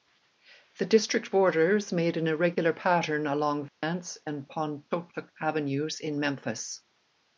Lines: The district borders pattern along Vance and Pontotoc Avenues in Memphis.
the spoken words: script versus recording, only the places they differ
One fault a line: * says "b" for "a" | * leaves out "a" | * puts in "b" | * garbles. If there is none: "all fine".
* puts in "made an irregular"